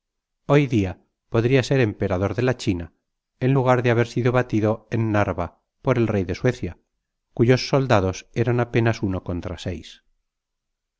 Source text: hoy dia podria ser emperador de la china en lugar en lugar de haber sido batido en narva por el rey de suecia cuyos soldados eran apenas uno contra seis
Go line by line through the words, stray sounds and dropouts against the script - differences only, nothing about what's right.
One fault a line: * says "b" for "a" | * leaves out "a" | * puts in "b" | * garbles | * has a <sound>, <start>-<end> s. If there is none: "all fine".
* leaves out "en lugar"